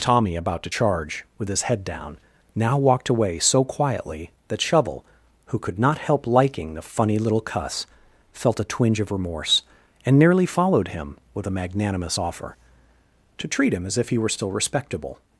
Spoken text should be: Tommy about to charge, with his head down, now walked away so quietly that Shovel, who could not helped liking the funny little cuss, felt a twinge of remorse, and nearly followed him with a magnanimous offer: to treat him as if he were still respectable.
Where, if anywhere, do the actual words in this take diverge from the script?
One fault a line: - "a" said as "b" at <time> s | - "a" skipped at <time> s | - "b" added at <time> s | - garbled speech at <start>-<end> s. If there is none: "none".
- "helped" said as "help" at 6.0 s